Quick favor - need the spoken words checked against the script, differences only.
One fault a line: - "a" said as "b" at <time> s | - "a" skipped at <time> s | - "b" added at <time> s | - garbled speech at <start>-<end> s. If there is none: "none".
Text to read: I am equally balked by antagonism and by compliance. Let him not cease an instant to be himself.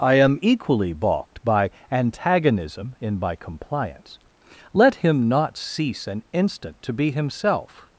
- "and" said as "in" at 3.0 s